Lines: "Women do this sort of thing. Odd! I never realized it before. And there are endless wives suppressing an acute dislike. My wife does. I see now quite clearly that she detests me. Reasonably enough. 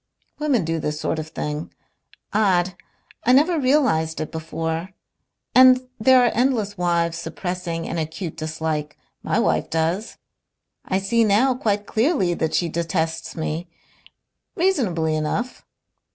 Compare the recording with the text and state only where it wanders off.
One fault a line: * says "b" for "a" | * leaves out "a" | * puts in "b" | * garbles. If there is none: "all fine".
all fine